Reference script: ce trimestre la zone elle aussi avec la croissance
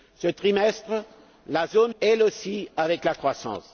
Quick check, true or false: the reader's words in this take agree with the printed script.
true